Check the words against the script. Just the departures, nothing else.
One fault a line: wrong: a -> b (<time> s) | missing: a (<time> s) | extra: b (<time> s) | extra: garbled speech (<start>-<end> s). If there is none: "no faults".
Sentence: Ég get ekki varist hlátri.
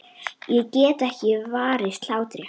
no faults